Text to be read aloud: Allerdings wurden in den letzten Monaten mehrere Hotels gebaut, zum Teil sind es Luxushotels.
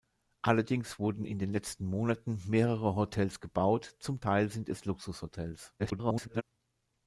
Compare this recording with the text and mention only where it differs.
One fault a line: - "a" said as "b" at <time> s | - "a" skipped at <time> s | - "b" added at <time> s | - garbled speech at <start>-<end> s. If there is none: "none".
- garbled speech at 5.8-6.4 s